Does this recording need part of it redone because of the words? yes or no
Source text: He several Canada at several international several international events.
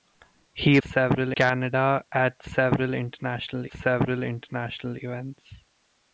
no